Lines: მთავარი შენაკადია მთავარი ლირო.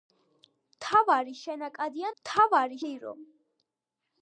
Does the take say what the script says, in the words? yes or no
yes